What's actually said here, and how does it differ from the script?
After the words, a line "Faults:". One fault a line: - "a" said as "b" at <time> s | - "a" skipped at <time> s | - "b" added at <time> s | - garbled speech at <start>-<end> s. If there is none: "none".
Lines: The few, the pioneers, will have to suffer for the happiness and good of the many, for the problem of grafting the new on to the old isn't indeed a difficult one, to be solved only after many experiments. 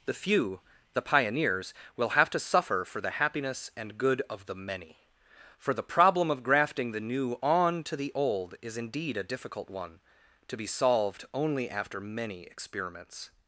The few, the pioneers, will have to suffer for the happiness and good of the many, for the problem of grafting the new on to the old is indeed a difficult one, to be solved only after many experiments.
Faults:
- "isn't" said as "is" at 8.6 s